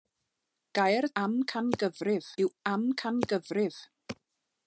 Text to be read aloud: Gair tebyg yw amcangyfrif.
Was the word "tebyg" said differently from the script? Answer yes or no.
yes